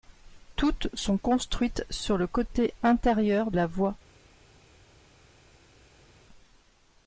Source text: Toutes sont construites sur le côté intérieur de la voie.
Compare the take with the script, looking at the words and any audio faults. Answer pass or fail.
fail